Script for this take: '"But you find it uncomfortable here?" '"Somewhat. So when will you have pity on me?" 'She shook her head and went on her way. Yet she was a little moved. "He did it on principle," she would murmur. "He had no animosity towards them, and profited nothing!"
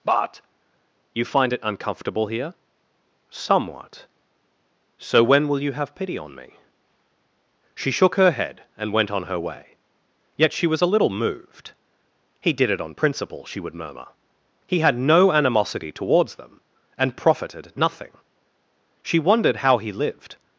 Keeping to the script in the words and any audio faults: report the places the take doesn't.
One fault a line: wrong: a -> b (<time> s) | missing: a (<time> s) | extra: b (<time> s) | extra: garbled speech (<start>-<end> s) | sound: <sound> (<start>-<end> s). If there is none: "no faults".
extra: She wondered how he lived (19.0 s)